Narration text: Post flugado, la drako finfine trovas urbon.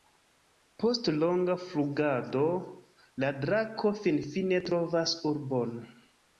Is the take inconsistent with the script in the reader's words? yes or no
yes